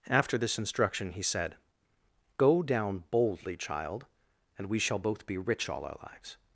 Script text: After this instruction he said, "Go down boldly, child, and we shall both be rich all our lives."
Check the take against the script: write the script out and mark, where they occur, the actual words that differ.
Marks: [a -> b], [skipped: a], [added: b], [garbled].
After this instruction he said, "Go down boldly, child, and we shall both be rich all our lives."